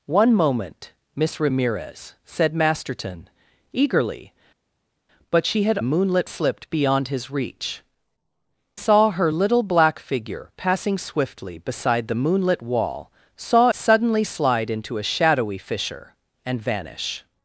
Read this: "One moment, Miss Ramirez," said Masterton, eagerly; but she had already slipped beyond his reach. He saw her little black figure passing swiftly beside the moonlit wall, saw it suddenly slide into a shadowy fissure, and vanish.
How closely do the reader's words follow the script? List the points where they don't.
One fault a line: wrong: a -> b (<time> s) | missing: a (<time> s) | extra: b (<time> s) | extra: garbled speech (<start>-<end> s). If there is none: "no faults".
wrong: already -> moonlit (5.8 s)
missing: He (7.8 s)
missing: it (13.7 s)